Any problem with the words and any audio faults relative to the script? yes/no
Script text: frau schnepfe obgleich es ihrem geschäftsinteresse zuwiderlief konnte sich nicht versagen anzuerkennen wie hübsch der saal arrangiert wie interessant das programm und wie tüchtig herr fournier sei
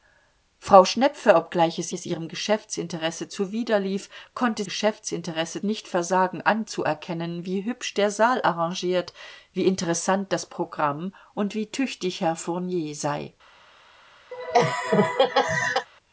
yes